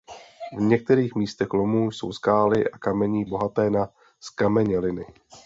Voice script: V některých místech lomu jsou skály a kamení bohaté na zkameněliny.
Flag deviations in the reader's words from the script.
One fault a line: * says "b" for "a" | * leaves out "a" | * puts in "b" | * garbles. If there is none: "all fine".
all fine